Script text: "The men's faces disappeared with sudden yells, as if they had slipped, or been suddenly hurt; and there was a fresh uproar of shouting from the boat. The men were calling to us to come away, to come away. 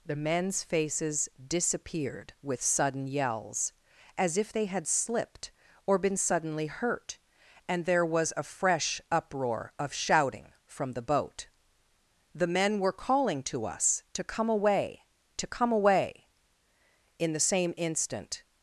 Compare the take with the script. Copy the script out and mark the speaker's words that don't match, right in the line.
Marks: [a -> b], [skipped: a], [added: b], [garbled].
"The men's faces disappeared with sudden yells, as if they had slipped, or been suddenly hurt; and there was a fresh uproar of shouting from the boat. The men were calling to us to come away, to come away. [added: In the same instant]